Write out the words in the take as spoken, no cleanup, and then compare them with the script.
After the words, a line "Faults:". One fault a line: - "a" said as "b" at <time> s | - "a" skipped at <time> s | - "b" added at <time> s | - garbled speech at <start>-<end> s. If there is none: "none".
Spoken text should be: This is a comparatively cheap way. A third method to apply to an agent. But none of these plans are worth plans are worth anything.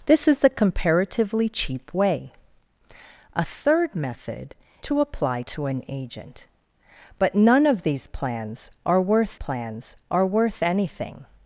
This is a comparatively cheap way. A third method to apply to an agent. But none of these plans are worth plans are worth anything.
Faults:
none